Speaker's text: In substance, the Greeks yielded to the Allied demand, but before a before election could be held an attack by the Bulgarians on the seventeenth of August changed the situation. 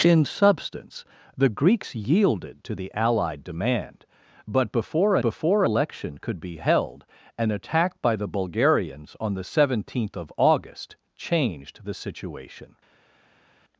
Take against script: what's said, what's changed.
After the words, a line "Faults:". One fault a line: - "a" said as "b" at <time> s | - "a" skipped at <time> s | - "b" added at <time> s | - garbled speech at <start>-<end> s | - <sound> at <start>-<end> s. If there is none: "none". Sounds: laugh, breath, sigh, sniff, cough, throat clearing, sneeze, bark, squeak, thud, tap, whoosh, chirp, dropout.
In substance, the Greeks yielded to the Allied demand, but before a before election could be held an attack by the Bulgarians on the seventeenth of August changed the situation.
Faults:
none